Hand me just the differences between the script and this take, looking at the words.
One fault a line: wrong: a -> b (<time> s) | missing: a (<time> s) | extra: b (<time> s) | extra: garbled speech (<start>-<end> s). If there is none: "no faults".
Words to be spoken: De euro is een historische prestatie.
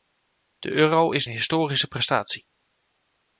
no faults